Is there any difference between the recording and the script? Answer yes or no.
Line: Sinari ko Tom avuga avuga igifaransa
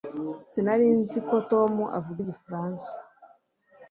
yes